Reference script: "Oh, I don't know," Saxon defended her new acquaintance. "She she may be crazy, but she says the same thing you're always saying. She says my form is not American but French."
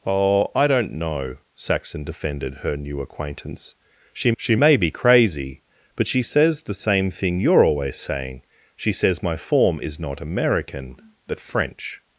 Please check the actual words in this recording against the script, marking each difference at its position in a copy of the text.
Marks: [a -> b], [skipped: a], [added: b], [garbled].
"Oh, I don't know," Saxon defended her new acquaintance. "She she may be crazy, but she says the same thing you're always saying. She says my form is not American but French."